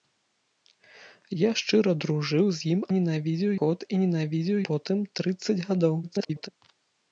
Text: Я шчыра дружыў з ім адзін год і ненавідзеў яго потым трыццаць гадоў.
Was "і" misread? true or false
false